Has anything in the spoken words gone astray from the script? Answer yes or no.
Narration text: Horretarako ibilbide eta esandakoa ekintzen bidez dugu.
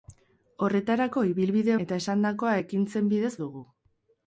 no